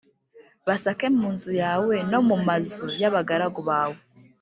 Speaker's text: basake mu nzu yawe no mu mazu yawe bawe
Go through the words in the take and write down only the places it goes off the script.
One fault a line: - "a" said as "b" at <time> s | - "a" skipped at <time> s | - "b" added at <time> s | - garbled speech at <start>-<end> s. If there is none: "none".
- "yawe" said as "y'abagaragu" at 3.0 s